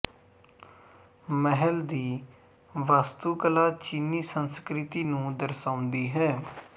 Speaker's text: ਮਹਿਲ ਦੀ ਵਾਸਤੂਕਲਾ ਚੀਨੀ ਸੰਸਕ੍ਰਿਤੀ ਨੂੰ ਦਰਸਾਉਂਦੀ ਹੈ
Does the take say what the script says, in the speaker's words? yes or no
yes